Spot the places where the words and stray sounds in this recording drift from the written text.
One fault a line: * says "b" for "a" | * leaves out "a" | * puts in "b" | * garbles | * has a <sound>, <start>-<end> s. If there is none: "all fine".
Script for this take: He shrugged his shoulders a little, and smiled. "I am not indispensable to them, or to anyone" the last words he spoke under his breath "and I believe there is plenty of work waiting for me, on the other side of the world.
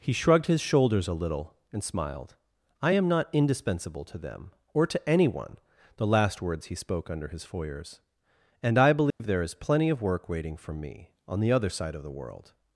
* says "foyers" for "breath"
* has a dropout, 9.1-9.2 s